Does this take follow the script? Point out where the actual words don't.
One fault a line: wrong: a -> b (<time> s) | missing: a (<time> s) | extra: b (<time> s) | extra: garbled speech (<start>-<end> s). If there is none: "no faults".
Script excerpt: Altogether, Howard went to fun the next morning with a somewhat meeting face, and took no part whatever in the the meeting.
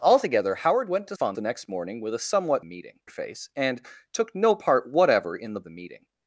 no faults